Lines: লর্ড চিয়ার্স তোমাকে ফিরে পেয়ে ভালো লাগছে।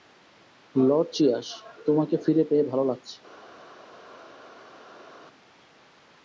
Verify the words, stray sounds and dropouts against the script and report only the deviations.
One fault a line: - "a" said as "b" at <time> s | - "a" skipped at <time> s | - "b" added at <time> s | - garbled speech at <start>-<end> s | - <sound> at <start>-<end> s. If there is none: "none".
none